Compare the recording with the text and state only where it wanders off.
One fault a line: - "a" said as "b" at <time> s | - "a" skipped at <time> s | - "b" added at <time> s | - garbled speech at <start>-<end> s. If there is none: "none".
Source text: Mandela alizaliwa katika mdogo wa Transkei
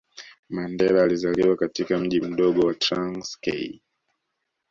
- "mji" added at 1.9 s